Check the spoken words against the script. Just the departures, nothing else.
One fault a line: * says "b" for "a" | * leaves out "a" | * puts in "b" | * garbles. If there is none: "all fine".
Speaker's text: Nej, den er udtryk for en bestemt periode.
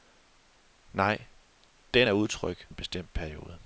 * leaves out "for"